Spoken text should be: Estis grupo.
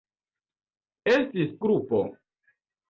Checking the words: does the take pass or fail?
pass